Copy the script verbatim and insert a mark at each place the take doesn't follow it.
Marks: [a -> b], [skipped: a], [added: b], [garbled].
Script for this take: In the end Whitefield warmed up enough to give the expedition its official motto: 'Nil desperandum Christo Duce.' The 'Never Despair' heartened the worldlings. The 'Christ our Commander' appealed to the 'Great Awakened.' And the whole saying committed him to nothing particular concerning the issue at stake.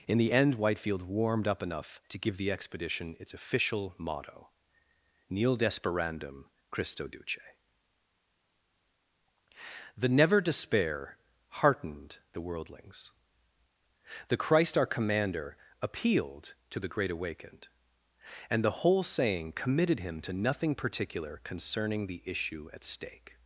In the end Whitefield warmed up enough to give the expedition its official motto: 'Nil desperandum Christo Duce.' The 'Never Despair' heartened the worldlings. The 'Christ our Commander' appealed to the 'Great Awakened.' And the whole saying committed him to nothing particular concerning the issue at stake.